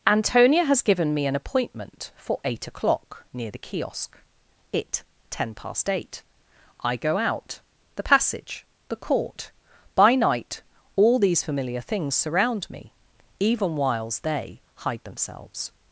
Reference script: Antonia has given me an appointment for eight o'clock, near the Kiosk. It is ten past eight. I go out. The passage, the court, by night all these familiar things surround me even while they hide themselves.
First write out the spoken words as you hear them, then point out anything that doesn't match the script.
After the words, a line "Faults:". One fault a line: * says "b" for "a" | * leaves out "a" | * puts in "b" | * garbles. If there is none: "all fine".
Antonia has given me an appointment for eight o'clock, near the Kiosk. It ten past eight. I go out. The passage, the court, by night all these familiar things surround me even whiles they hide themselves.
Faults:
* leaves out "is"
* says "whiles" for "while"